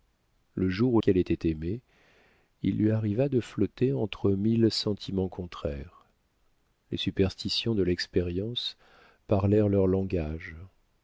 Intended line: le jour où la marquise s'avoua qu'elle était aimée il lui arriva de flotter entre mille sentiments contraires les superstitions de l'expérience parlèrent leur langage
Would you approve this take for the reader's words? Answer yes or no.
no